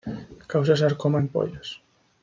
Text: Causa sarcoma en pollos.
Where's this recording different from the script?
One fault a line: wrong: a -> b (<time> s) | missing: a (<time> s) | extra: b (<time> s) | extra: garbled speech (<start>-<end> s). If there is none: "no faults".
no faults